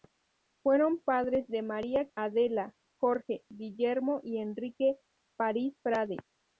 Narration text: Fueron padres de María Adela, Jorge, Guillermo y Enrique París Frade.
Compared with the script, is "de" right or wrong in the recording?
right